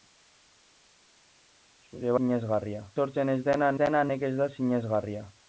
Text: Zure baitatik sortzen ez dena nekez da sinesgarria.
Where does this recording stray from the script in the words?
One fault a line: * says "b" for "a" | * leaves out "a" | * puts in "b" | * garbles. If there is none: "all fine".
* says "sinesgarria" for "baitatik"
* puts in "dena"